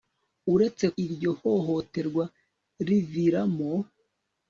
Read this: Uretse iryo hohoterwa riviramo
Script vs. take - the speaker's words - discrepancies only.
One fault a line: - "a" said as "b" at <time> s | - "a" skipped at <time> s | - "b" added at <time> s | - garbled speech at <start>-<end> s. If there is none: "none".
none